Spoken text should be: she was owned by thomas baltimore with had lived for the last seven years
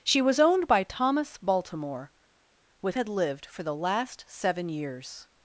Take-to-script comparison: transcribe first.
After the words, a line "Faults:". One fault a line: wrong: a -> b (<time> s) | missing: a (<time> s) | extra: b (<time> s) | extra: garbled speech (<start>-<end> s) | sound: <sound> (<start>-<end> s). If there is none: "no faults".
she was owned by thomas baltimore with had lived for the last seven years
Faults:
no faults